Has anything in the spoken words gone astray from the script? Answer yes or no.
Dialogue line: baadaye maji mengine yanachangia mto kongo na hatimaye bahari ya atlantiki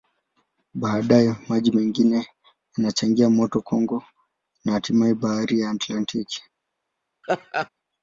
no